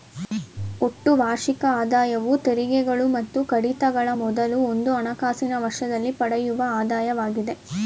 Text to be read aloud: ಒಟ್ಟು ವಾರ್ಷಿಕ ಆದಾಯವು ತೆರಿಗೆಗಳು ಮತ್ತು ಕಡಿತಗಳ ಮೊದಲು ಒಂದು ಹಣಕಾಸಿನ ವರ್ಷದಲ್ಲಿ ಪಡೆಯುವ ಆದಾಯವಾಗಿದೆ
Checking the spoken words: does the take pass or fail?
pass